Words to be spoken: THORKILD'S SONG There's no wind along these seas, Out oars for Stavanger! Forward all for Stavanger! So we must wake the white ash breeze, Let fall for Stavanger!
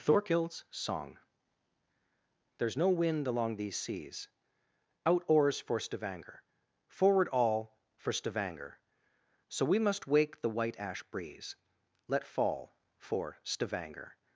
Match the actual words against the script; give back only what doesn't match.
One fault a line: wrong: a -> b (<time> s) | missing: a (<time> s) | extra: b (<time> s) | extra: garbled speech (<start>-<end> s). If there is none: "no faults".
no faults